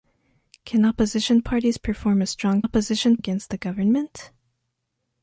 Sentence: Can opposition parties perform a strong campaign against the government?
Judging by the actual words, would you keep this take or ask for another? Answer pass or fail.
fail